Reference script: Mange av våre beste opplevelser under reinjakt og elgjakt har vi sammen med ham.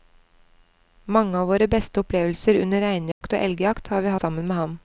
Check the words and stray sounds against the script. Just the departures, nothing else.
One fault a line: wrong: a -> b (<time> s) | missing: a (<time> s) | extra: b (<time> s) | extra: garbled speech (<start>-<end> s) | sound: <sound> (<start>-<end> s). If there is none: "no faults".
sound: dropout (3.1-3.2 s)